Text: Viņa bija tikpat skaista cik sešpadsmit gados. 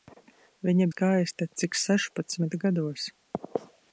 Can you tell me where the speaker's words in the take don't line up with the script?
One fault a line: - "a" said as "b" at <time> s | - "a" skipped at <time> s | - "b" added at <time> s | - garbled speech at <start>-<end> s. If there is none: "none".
- "bija tikpat" skipped at 0.9 s